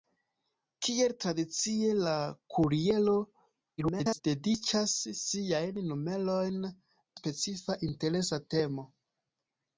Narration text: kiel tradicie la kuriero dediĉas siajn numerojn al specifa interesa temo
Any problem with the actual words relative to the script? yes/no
yes